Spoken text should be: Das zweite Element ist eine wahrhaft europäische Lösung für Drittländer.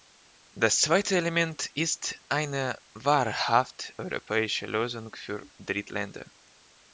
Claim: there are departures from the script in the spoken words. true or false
false